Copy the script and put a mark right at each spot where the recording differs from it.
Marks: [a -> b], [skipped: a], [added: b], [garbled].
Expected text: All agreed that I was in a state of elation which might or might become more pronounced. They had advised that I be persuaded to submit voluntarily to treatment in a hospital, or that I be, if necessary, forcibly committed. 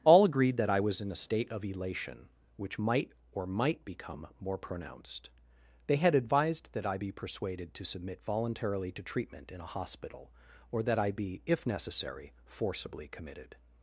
All agreed that I was in a state of elation which might or might become more pronounced. They had advised that I be persuaded to submit voluntarily to treatment in a hospital, or that I be, if necessary, forcibly committed.